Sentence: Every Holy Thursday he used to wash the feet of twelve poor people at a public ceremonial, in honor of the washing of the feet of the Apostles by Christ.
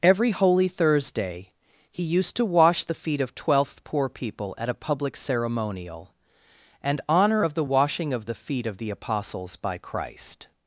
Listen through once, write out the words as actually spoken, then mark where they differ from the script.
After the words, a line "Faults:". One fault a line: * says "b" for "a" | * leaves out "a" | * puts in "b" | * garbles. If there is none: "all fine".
Every Holy Thursday he used to wash the feet of twelfth poor people at a public ceremonial, and honor of the washing of the feet of the Apostles by Christ.
Faults:
* says "twelfth" for "twelve"
* says "and" for "in"